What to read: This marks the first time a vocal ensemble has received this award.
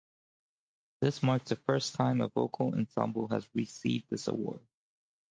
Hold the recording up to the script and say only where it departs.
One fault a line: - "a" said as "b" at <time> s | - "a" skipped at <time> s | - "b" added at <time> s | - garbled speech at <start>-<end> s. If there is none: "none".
none